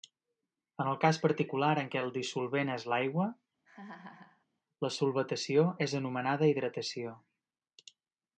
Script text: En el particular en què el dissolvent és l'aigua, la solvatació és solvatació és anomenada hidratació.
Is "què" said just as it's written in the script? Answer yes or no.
yes